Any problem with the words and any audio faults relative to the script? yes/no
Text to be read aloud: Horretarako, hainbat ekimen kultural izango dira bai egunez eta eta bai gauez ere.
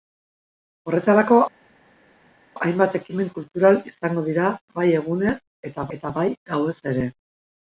no